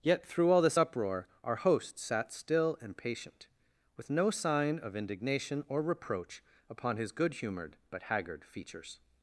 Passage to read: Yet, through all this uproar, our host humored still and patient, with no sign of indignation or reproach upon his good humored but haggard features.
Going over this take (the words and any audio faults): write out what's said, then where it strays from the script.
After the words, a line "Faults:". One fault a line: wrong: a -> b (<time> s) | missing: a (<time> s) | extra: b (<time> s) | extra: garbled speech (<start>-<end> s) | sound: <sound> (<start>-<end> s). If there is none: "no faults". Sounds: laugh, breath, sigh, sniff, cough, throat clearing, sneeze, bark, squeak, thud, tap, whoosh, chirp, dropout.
Yet, through all this uproar, our host sat still and patient, with no sign of indignation or reproach upon his good humored but haggard features.
Faults:
wrong: humored -> sat (2.0 s)